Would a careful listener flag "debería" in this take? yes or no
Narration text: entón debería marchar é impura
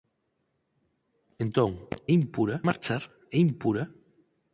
yes